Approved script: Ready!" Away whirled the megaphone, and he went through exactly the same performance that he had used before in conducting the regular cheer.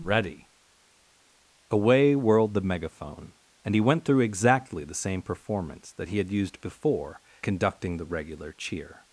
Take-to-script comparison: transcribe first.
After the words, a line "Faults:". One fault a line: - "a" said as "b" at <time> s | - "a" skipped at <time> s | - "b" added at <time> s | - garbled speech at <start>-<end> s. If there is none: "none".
Ready!" Away whirled the megaphone, and he went through exactly the same performance that he had used before conducting the regular cheer.
Faults:
- "in" skipped at 7.2 s